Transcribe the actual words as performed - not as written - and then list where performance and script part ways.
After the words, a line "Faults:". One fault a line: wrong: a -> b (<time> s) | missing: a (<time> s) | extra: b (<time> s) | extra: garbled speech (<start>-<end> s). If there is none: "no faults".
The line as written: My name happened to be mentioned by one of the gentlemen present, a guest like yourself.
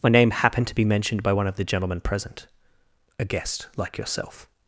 My name happened to be mentioned by one of the gentlemen present, a guest like yourself.
Faults:
no faults